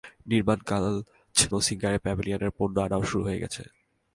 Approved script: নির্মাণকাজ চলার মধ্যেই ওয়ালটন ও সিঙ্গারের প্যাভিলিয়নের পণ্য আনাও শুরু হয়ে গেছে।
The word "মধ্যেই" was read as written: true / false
false